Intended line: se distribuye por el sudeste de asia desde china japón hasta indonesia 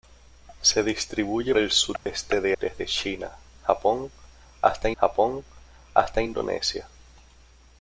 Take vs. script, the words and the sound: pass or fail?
fail